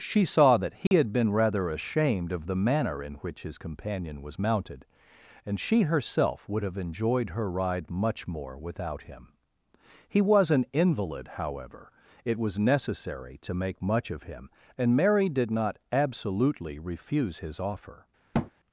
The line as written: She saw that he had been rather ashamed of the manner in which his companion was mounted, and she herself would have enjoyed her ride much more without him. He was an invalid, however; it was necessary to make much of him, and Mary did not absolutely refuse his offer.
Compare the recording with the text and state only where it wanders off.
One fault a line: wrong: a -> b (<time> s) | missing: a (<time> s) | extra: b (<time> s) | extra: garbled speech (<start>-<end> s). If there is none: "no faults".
no faults